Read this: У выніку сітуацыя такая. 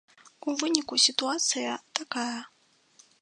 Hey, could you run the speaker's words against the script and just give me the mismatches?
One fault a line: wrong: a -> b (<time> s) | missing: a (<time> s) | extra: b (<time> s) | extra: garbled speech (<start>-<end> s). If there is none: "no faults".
no faults